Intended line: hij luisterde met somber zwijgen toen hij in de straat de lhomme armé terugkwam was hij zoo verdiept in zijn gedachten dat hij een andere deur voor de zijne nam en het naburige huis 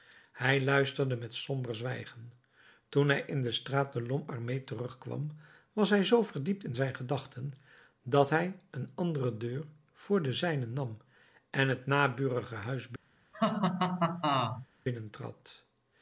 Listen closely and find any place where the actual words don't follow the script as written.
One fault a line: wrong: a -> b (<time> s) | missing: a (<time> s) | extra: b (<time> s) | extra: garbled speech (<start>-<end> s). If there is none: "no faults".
no faults